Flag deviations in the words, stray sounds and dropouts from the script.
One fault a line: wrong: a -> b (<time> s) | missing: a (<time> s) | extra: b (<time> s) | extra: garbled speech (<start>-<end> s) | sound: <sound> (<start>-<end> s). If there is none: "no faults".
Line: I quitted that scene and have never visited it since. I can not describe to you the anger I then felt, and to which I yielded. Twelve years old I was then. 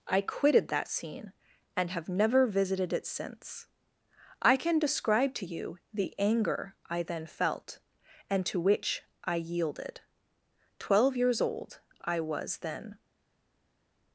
missing: not (4.8 s)